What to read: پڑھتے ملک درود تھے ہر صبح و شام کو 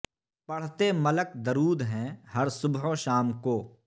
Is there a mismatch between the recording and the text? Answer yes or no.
yes